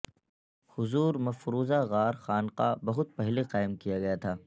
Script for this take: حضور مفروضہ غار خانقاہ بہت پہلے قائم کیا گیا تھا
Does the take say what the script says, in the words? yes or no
yes